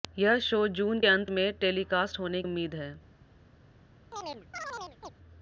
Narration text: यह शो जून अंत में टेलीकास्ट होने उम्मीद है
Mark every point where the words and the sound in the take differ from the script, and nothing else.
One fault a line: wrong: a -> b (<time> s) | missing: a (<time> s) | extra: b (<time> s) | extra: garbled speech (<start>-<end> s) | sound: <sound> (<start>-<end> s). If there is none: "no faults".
sound: chirp (4.1-5.1 s)